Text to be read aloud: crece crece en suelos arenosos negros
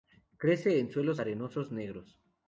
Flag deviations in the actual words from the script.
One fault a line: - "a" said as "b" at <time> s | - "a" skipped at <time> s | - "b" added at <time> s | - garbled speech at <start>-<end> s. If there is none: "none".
- "crece" skipped at 0.8 s